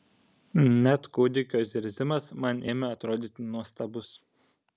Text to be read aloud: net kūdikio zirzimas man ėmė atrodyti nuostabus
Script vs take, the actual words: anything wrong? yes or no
no